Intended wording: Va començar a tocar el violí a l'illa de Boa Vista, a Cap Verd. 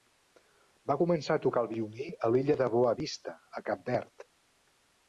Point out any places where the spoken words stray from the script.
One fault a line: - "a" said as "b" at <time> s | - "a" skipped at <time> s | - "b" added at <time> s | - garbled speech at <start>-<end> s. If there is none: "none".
none